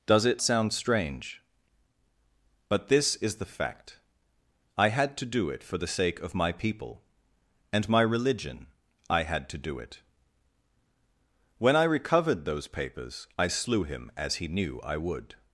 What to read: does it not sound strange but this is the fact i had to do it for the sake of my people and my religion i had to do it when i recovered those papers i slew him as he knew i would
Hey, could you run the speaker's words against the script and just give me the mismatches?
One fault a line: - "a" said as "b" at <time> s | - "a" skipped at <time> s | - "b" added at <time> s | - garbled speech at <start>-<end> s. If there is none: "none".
- "not" skipped at 0.4 s